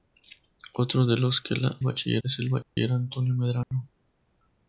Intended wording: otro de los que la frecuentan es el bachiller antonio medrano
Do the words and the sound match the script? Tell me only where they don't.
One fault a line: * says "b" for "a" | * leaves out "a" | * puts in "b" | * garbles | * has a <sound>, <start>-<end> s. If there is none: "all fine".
* says "bachiller" for "frecuentan"
* has a dropout, 2.6-2.8 s
* has a dropout, 3.6-3.7 s